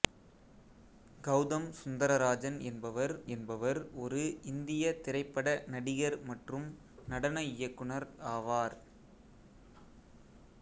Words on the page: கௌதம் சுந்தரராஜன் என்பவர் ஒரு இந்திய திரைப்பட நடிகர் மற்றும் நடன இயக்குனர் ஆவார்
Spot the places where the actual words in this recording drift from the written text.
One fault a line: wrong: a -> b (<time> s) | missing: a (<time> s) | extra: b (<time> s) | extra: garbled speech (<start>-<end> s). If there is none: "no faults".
extra: என்பவர் (3.3 s)